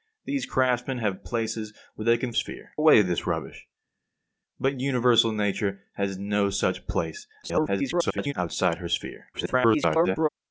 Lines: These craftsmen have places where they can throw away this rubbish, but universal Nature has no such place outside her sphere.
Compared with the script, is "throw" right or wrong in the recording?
wrong